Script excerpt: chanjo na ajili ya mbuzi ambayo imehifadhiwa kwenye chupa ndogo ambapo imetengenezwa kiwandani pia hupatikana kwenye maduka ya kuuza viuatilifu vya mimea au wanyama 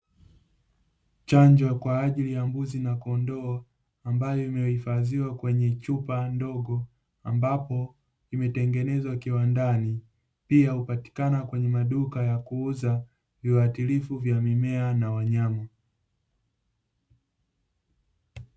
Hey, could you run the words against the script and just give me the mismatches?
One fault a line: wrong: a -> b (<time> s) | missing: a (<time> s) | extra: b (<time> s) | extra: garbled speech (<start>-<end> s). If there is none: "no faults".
wrong: na -> kwa (1.8 s)
extra: na kondoo (2.8 s)
wrong: au -> na (14.9 s)